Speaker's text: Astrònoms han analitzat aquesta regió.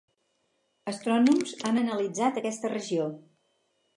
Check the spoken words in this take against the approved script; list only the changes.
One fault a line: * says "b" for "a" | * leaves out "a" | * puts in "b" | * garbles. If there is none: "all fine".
all fine